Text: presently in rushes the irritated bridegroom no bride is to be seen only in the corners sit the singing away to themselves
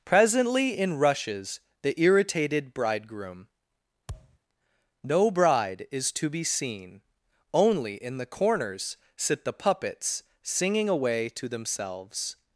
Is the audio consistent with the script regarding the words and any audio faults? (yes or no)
no